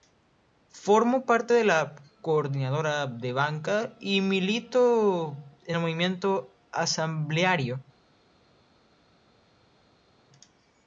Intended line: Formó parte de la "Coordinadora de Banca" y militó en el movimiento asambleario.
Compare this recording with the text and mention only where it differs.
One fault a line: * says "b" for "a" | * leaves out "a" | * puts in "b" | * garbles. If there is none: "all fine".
all fine